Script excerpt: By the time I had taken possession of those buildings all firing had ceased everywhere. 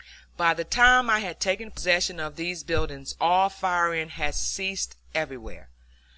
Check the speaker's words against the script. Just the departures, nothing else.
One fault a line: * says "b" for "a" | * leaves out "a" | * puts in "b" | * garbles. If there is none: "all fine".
* says "these" for "those"